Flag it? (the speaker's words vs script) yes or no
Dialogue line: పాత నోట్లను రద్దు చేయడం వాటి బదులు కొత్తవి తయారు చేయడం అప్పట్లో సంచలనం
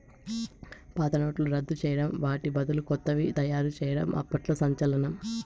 no